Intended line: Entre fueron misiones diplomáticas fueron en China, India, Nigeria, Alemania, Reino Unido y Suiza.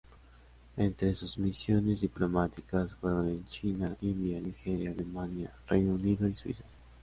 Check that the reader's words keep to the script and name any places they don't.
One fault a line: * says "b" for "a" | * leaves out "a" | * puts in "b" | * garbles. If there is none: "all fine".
* says "sus" for "fueron"